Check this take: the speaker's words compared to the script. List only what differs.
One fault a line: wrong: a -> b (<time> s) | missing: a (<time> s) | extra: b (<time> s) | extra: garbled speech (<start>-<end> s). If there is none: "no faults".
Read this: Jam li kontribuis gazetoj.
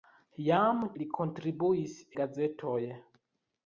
no faults